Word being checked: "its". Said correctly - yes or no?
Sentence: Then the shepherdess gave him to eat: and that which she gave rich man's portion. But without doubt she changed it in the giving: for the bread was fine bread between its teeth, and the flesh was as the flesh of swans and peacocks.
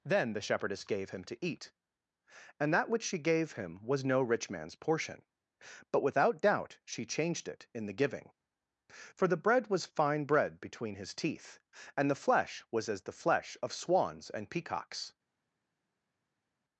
no